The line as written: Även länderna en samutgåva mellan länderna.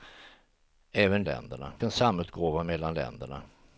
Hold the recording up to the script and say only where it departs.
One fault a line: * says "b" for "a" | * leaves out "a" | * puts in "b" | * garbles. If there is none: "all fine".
all fine